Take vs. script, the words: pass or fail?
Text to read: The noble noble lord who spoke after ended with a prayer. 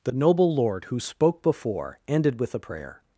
fail